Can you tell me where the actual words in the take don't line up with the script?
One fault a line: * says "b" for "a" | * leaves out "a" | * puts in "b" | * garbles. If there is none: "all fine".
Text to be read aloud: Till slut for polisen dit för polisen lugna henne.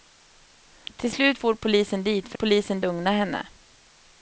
all fine